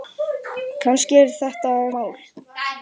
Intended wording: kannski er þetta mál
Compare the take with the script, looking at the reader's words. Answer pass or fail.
pass